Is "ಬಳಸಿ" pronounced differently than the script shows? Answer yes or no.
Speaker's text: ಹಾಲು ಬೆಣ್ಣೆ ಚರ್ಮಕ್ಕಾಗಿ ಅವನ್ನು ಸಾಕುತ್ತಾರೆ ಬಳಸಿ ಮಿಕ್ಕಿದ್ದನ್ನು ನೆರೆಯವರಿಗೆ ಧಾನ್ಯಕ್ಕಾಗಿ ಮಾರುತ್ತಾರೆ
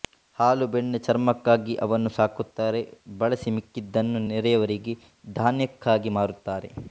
no